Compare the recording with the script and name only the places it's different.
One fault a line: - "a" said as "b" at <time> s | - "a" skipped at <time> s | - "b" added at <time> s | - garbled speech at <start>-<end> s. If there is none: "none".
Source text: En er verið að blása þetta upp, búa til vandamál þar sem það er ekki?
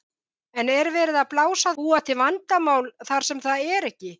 - "þetta upp" skipped at 1.8 s